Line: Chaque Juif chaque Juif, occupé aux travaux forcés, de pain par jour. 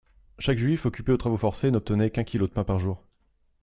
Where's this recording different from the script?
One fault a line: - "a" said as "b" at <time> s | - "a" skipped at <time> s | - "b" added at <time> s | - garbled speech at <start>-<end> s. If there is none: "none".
- "chaque Juif" skipped at 0.9 s
- "n'obtenait qu'un kilo" added at 1.7 s